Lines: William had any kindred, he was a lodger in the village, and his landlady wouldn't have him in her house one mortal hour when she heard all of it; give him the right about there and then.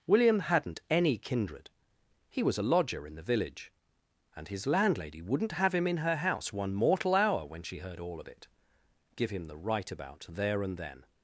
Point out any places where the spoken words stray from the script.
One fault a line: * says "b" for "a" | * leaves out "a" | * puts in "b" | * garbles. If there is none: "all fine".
* says "hadn't" for "had"